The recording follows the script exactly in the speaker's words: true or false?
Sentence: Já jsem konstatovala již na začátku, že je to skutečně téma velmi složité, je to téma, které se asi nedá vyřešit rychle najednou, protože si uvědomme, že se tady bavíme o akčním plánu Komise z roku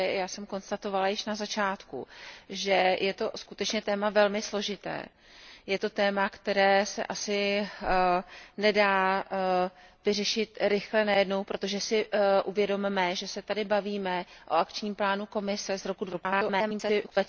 false